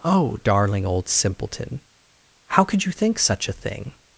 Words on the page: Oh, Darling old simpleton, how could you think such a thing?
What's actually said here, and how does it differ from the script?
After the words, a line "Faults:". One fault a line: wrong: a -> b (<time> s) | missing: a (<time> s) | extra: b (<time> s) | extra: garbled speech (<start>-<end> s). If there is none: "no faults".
Oh, Darling old simpleton, how could you think such a thing?
Faults:
no faults